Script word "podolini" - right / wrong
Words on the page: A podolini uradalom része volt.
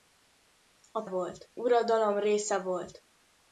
wrong